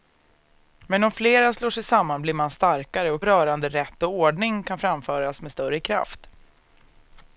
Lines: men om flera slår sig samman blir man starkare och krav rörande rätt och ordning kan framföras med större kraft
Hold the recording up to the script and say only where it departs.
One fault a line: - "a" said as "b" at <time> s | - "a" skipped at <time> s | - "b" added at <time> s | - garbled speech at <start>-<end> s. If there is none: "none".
- "krav" skipped at 3.2 s